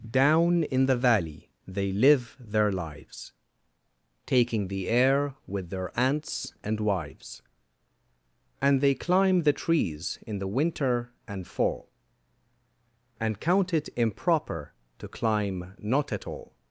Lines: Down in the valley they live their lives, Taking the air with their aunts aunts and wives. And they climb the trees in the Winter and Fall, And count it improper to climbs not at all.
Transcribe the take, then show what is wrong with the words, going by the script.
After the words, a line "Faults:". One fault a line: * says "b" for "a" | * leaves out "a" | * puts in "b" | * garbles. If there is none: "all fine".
Down in the valley they live their lives, Taking the air with their aunts and wives. And they climb the trees in the Winter and Fall, And count it improper to climb not at all.
Faults:
* leaves out "aunts"
* says "climb" for "climbs"